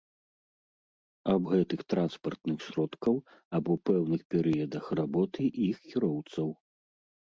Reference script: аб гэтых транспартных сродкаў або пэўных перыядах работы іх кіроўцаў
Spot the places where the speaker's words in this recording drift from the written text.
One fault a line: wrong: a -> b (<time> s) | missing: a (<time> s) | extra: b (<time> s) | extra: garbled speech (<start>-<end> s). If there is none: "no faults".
no faults